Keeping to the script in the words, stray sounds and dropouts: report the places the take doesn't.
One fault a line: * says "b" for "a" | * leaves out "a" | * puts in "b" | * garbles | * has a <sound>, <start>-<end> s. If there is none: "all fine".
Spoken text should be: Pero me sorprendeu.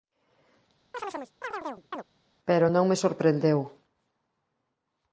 * has a chirp, 0.9-2.0 s
* puts in "non"